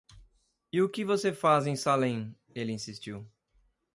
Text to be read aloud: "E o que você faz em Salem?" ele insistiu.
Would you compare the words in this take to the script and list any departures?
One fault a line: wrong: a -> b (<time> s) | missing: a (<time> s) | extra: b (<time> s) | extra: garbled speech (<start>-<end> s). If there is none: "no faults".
no faults